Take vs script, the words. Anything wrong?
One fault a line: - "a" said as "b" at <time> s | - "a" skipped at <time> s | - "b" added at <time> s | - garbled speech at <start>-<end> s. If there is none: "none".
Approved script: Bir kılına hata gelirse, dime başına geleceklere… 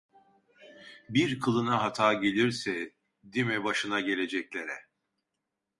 none